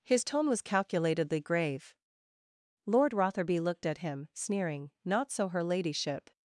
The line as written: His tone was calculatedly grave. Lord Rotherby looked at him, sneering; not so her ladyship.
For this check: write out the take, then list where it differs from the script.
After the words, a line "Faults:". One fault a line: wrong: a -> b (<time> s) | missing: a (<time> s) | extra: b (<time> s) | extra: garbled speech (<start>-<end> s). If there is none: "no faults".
His tone was calculatedly grave. Lord Rotherby looked at him, sneering; not so her ladyship.
Faults:
no faults